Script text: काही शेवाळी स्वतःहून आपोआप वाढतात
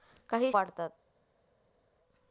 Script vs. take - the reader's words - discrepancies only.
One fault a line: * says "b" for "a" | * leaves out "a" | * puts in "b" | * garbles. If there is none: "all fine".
* leaves out "शेवाळी स्वतःहून आपोआप"